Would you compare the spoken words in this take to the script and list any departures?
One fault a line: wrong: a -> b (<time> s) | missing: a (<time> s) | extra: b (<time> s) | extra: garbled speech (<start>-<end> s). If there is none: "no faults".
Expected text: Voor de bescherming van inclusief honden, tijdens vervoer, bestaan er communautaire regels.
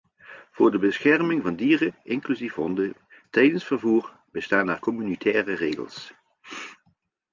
extra: dieren (1.5 s)